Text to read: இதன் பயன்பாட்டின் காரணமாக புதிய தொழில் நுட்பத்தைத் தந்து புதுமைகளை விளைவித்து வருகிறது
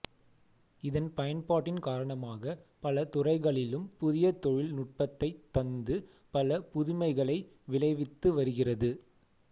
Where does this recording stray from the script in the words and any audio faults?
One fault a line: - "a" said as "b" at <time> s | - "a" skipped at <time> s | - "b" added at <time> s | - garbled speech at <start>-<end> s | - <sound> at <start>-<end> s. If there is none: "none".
- "பல துறைகளிலும்" added at 2.8 s
- "பல" added at 6.3 s